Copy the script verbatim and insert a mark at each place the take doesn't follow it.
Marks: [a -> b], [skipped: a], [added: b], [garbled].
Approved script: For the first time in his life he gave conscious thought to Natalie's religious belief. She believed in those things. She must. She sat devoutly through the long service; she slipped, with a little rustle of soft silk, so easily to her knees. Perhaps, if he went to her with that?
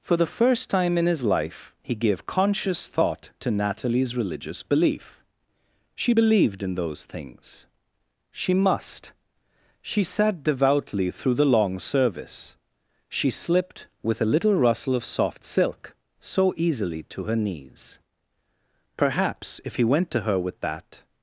For the first time in his life he gave conscious thought to Natalie's religious belief. She believed in those things. She must. She sat devoutly through the long service; she slipped, with a little rustle of soft silk, so easily to her knees. Perhaps, if he went to her with that?